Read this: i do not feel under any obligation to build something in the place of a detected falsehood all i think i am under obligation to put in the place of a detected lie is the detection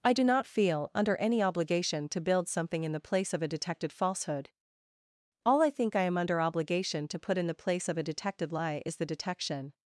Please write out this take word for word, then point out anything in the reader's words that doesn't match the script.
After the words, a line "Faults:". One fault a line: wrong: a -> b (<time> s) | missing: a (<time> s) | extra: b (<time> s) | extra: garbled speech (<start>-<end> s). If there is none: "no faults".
i do not feel under any obligation to build something in the place of a detected falsehood all i think i am under obligation to put in the place of a detected lie is the detection
Faults:
no faults